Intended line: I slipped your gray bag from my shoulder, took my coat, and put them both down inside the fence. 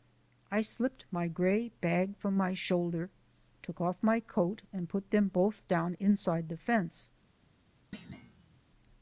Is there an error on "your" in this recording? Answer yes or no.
yes